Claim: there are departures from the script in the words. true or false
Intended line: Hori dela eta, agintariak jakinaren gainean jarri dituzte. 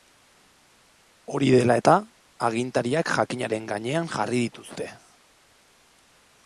false